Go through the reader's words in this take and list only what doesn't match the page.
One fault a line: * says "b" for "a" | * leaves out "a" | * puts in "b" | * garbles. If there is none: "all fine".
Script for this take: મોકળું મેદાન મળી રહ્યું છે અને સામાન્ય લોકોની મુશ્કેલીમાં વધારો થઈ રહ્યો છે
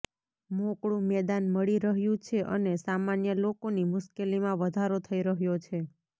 all fine